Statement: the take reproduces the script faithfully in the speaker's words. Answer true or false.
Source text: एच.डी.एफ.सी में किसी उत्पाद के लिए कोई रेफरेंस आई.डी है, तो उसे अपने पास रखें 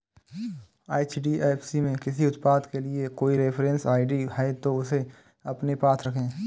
true